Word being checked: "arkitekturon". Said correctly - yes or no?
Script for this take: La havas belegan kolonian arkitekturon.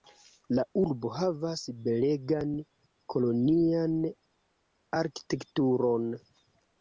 yes